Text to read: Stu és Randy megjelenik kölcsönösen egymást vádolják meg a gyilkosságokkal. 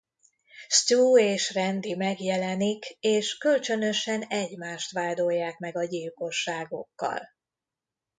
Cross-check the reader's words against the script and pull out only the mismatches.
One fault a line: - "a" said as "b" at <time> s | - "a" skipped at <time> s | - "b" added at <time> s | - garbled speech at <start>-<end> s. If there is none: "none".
- "és" added at 3.0 s